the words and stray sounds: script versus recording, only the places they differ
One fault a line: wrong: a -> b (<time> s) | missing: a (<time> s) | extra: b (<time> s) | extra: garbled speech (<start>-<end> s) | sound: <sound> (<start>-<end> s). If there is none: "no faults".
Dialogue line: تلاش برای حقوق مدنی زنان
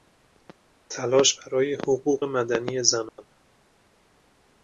sound: dropout (3.1-3.2 s)